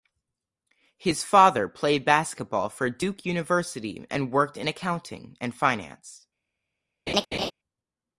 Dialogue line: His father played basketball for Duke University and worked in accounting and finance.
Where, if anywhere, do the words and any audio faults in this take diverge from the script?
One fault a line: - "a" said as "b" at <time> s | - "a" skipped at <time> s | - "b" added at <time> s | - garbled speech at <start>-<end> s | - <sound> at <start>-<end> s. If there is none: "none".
- laugh at 7.1-7.5 s